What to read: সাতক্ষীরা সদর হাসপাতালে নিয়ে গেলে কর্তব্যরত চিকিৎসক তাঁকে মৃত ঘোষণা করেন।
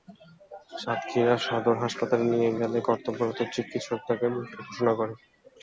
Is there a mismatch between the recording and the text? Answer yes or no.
no